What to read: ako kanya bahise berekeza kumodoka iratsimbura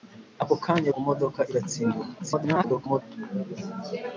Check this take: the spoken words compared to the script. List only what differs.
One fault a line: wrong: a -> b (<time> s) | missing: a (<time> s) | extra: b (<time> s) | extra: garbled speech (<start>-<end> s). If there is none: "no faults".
missing: bahise berekeza (0.9 s)
extra: garbled speech (2.2-3.0 s)